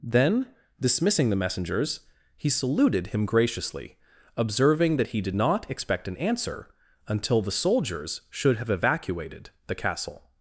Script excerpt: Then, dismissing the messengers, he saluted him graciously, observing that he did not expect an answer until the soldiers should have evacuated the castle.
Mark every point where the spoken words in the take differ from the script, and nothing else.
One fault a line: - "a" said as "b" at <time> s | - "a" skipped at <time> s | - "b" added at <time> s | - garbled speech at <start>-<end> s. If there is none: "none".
none